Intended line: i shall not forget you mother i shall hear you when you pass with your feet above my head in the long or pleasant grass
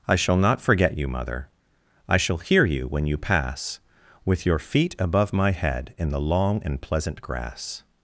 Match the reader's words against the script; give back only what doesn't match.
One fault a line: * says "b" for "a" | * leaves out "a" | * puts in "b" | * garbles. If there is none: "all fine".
* says "and" for "or"